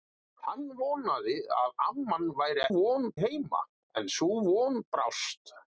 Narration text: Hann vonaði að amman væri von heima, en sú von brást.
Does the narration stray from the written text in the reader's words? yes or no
no